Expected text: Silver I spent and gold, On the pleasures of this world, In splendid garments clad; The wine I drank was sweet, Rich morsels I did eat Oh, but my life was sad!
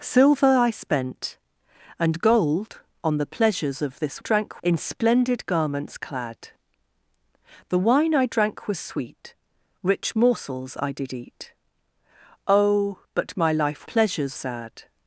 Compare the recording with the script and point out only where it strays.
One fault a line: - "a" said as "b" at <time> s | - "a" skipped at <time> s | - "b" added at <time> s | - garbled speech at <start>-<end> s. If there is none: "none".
- "world" said as "drank" at 4.2 s
- "was" said as "pleasures" at 13.8 s